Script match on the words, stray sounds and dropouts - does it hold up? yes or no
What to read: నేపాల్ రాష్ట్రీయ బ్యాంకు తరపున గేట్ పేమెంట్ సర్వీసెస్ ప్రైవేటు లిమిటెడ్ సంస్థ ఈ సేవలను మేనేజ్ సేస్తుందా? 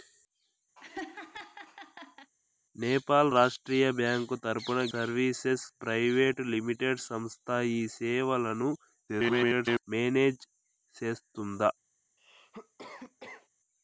no